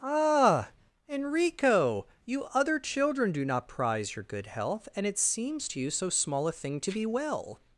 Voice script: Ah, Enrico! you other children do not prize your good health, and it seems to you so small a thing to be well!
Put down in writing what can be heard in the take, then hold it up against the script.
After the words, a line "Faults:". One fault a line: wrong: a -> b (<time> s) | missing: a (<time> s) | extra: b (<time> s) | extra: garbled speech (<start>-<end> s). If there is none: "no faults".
Ah, Enrico! you other children do not prize your good health, and it seems to you so small a thing to be well!
Faults:
no faults